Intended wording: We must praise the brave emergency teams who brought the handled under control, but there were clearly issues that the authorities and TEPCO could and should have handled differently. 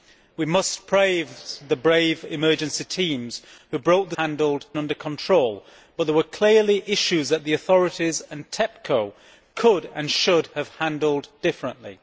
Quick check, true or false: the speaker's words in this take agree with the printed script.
true